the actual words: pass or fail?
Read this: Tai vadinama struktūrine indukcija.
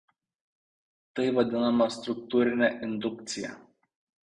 pass